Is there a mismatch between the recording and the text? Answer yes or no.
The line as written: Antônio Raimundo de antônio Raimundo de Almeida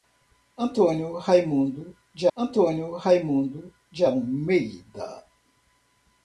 no